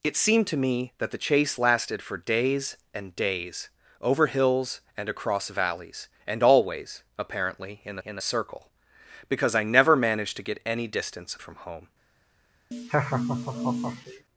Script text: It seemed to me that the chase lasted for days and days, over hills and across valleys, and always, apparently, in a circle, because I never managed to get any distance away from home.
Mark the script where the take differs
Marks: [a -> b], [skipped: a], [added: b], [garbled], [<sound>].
It seemed to me that the chase lasted for days and days, over hills and across valleys, and always, apparently, in [added: in] a circle, because I never managed to get any distance [skipped: away] from home. [laugh]